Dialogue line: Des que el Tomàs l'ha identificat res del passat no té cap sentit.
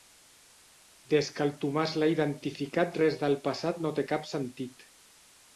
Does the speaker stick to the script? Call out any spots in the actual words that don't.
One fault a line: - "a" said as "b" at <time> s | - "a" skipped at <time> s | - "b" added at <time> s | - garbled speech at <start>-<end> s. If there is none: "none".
none